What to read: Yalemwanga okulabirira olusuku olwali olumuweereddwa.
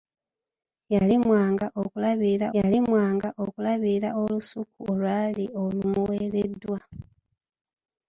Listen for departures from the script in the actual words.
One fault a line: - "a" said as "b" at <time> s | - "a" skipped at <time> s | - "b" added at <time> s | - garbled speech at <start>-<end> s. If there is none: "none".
- "yalemwanga okulabirira" added at 2.6 s